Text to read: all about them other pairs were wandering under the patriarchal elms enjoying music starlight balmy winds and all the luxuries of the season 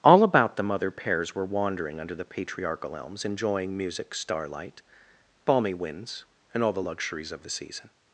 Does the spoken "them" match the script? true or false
true